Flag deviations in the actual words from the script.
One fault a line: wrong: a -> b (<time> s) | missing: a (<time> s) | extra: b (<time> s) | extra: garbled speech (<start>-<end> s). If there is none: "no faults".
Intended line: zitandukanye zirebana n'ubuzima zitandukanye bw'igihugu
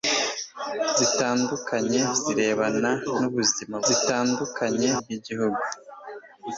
no faults